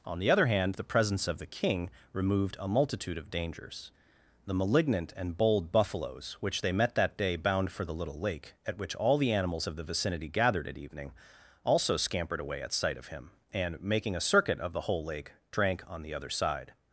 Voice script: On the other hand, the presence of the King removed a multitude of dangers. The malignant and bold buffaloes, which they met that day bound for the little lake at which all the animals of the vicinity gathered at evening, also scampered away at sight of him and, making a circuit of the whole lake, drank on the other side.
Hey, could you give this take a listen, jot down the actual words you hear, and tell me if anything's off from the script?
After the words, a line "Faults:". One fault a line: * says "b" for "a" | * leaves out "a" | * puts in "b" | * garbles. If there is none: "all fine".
On the other hand, the presence of the King removed a multitude of dangers. The malignant and bold buffaloes, which they met that day bound for the little lake at which all the animals of the vicinity gathered at evening, also scampered away at sight of him and, making a circuit of the whole lake, drank on the other side.
Faults:
all fine